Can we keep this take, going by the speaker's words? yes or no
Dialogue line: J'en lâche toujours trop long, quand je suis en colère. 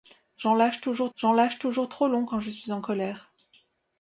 no